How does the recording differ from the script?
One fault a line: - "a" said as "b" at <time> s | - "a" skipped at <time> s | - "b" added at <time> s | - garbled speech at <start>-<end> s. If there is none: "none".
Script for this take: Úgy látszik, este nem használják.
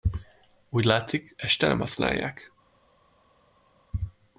none